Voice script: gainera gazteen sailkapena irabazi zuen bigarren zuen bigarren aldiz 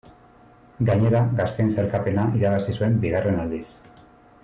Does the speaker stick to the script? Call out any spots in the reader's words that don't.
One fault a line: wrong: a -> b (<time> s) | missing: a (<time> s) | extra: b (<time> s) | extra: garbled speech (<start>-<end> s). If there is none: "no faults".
missing: zuen bigarren (3.4 s)